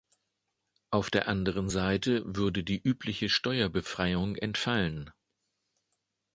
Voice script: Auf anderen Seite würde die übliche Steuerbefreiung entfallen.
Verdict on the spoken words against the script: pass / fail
fail